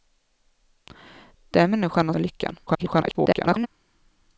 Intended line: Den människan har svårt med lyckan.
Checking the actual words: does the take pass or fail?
fail